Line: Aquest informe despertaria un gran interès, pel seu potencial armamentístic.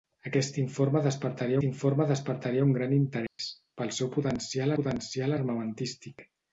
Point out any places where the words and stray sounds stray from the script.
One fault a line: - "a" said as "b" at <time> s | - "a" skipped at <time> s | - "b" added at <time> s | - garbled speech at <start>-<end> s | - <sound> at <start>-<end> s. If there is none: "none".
- "informe despertaria" added at 1.7 s
- dropout at 3.3-3.4 s
- "potencial" added at 4.8 s